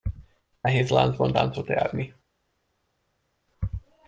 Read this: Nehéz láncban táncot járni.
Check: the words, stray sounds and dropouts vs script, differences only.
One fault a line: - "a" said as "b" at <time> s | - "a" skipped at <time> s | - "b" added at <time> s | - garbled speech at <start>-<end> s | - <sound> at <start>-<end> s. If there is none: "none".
none